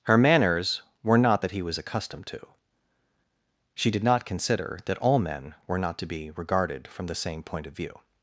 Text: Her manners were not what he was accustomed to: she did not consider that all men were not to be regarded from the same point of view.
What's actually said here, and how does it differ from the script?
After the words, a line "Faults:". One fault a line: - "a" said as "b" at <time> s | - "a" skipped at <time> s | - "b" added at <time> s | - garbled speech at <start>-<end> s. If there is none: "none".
Her manners were not that he was accustomed to: she did not consider that all men were not to be regarded from the same point of view.
Faults:
- "what" said as "that" at 1.4 s